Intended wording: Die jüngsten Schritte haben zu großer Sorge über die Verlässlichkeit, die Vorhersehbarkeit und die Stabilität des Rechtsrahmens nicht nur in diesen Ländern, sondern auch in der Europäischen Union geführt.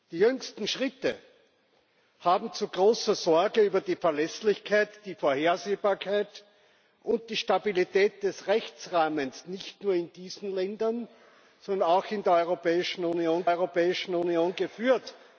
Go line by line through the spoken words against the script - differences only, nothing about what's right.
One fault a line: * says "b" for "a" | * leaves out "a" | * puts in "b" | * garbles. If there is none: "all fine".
* puts in "Europäischen Union"